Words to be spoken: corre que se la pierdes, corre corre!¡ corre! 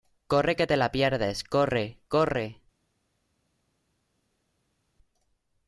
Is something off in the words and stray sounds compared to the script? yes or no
yes